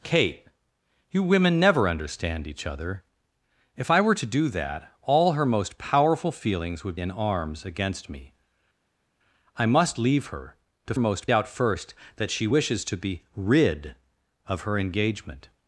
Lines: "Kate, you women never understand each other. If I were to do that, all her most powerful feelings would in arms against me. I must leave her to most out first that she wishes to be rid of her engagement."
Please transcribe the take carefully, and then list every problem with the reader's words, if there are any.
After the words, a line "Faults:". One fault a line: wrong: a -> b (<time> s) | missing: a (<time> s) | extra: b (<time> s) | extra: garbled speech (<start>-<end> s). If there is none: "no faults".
"Kate, you women never understand each other. If I were to do that, all her most powerful feelings would in arms against me. I must leave her to most out first that she wishes to be rid of her engagement."
Faults:
no faults